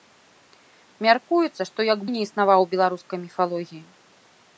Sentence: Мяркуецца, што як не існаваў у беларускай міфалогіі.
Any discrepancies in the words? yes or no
no